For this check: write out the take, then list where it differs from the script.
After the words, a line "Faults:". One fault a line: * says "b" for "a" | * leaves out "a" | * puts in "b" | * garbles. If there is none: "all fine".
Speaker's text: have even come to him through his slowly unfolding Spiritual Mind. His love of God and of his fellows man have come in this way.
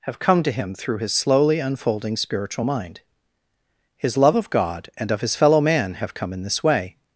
have come to him through his slowly unfolding Spiritual Mind. His love of God and of his fellow man have come in this way.
Faults:
* leaves out "even"
* says "fellow" for "fellows"